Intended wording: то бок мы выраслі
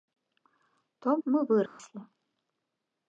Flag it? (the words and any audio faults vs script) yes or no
yes